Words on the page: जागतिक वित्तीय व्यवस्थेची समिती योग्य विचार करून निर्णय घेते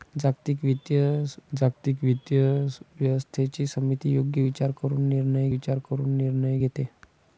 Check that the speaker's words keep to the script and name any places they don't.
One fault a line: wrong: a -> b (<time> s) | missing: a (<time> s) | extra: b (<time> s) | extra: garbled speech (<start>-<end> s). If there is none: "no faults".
extra: जागतिक वित्तीय (1.5 s)
extra: विचार करून निर्णय (5.5 s)